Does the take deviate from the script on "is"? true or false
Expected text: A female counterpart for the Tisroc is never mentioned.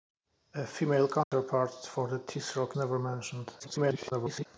true